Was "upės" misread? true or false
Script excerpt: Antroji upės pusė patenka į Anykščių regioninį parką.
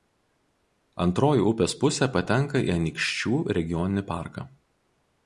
false